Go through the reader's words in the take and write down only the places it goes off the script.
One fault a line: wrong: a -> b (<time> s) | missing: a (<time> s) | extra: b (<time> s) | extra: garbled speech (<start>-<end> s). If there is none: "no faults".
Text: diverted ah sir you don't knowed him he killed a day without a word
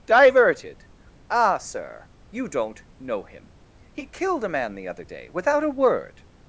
wrong: knowed -> know (3.0 s)
extra: man the other (4.5 s)